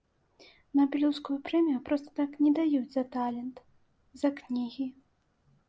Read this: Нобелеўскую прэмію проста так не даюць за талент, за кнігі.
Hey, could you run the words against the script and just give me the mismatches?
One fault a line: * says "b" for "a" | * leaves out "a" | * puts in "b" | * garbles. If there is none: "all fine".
all fine